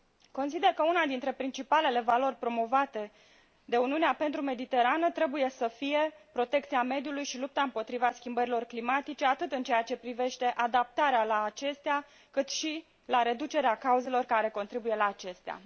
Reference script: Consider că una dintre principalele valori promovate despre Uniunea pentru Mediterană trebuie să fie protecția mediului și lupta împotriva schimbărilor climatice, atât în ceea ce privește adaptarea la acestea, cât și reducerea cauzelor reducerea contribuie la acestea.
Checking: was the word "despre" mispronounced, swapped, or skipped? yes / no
yes